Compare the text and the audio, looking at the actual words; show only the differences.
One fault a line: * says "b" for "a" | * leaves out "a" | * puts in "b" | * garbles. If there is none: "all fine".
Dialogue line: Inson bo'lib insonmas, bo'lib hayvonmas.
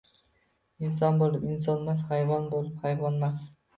* puts in "hayvon"